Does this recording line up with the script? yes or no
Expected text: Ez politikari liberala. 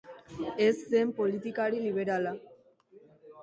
no